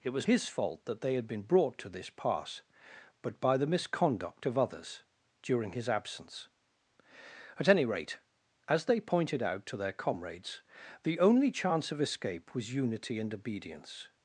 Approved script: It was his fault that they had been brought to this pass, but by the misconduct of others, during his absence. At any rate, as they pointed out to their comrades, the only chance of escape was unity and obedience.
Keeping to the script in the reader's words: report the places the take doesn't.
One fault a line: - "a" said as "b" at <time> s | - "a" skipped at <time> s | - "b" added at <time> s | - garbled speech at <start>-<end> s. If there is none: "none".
none